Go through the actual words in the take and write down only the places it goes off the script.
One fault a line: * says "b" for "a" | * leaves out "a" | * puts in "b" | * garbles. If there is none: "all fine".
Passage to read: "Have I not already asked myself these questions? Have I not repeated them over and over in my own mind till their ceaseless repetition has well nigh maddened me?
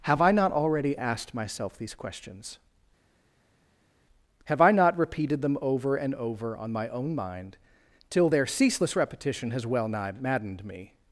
* says "on" for "in"